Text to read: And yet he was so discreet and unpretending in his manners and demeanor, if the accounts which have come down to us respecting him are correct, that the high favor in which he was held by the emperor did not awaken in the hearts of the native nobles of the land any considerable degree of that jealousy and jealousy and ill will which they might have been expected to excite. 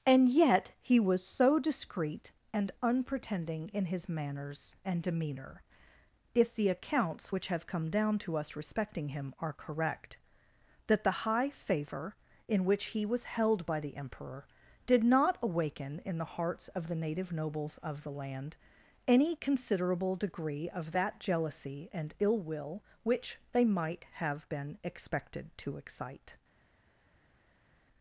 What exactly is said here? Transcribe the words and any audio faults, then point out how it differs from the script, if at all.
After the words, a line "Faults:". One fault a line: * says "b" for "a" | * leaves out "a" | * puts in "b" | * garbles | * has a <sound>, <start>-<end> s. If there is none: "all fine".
And yet he was so discreet and unpretending in his manners and demeanor, if the accounts which have come down to us respecting him are correct, that the high favor in which he was held by the emperor did not awaken in the hearts of the native nobles of the land any considerable degree of that jealousy and ill will which they might have been expected to excite.
Faults:
* leaves out "jealousy and"